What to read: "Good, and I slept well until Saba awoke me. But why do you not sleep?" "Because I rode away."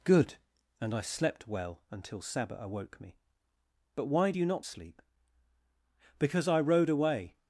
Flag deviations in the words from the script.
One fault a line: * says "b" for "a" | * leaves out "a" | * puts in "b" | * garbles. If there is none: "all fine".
all fine